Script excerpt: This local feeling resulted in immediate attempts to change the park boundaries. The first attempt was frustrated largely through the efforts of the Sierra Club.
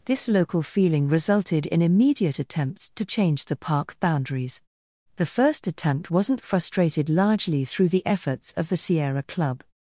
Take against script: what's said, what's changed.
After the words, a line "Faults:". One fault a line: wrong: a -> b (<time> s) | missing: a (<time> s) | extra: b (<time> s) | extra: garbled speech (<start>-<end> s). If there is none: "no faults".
This local feeling resulted in immediate attempts to change the park boundaries. The first attempt wasn't frustrated largely through the efforts of the Sierra Club.
Faults:
wrong: was -> wasn't (6.1 s)